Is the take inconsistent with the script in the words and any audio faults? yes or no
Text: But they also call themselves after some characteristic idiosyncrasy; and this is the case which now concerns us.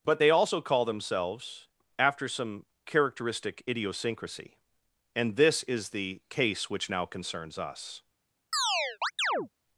yes